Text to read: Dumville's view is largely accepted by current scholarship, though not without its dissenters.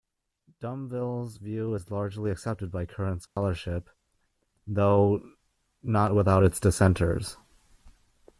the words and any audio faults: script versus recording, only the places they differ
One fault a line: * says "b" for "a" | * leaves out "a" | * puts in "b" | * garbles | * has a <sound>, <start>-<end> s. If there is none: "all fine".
* has a dropout, 3.3-3.4 s